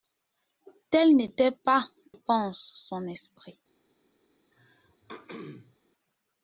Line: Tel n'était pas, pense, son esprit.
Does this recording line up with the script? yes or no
yes